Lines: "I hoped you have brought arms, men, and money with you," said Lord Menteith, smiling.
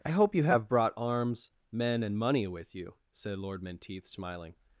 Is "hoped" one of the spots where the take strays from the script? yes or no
yes